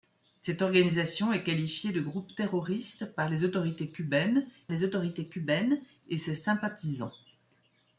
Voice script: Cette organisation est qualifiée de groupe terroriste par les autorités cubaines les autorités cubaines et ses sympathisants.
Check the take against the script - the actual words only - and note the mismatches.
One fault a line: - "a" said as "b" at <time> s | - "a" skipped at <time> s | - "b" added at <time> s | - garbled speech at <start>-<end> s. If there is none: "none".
none